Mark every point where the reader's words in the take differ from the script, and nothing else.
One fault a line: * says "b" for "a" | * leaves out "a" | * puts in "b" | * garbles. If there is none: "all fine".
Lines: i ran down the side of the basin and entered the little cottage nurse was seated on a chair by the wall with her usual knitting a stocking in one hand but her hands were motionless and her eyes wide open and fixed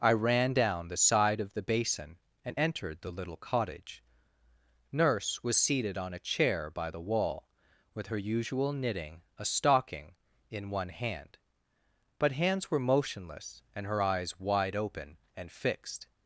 * leaves out "her"